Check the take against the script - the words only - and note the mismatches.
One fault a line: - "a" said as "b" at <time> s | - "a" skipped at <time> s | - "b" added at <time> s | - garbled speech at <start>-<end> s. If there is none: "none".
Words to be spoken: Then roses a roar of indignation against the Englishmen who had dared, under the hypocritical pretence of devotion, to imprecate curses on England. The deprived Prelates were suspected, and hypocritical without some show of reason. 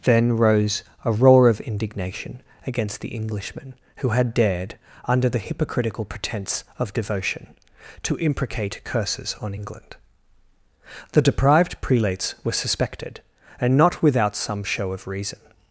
- "roses" said as "rose" at 0.4 s
- "hypocritical" said as "not" at 13.8 s